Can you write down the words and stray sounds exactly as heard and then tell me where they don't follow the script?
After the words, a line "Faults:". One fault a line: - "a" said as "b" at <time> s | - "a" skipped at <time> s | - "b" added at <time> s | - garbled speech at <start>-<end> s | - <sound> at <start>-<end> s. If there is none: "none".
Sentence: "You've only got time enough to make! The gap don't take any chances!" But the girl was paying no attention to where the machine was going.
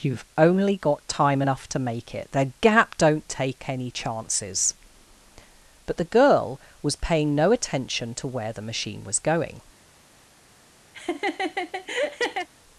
"You've only got time enough to make it! The gap don't take any chances!" But the girl was paying no attention to where the machine was going.
Faults:
- "it" added at 2.1 s
- laugh at 10.9-12.5 s